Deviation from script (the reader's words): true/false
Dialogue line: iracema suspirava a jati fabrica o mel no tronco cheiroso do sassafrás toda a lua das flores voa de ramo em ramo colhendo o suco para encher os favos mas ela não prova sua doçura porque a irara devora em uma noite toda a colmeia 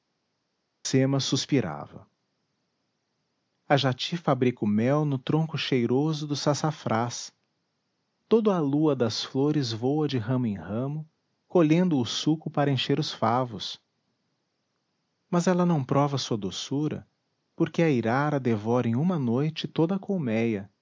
false